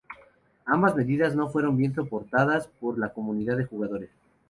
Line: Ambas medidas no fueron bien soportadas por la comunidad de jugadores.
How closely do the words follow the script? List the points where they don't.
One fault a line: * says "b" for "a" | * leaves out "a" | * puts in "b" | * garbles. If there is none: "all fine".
all fine